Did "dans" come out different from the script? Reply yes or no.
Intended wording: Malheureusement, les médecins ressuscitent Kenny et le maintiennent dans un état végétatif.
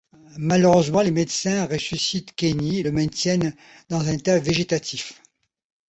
no